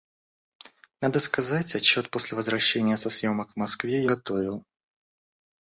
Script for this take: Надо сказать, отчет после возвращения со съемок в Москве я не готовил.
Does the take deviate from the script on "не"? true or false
true